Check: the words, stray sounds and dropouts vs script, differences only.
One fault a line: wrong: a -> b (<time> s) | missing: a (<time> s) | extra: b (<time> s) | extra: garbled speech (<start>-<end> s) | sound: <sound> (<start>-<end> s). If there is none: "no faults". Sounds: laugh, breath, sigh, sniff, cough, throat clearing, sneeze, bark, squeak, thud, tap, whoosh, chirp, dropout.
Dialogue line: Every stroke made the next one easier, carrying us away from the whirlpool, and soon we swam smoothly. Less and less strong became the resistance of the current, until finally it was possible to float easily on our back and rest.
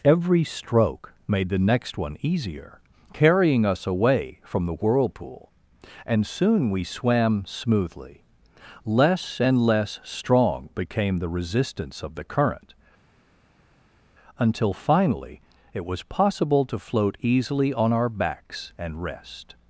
wrong: back -> backs (18.1 s)